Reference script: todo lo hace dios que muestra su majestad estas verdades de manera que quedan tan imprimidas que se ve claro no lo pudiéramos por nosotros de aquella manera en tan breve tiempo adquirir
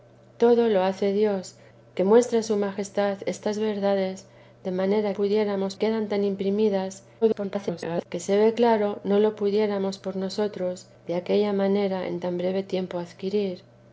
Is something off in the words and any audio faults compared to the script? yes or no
yes